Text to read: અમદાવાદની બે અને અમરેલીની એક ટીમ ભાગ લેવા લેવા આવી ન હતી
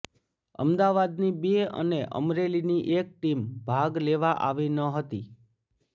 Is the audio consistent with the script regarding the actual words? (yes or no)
no